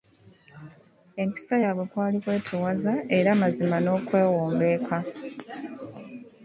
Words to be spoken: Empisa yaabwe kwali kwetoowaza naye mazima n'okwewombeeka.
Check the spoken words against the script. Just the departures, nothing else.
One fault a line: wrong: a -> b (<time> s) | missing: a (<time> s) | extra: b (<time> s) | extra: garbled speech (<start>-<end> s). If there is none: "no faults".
wrong: naye -> era (3.2 s)